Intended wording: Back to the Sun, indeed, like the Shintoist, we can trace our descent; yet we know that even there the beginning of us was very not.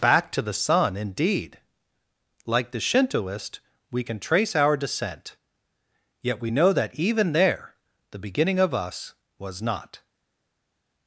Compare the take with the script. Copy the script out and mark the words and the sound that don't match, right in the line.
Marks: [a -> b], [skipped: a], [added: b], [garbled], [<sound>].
Back to the Sun, indeed, like the Shintoist, we can trace our descent; yet we know that even there the beginning of us was [skipped: very] not.